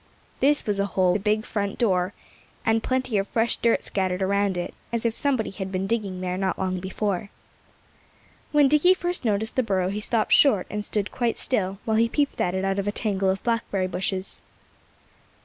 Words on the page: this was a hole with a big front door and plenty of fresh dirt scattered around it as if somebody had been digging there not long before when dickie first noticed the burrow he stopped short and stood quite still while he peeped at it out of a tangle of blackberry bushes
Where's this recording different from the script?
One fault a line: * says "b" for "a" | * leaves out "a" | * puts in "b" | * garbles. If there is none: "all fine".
* leaves out "with"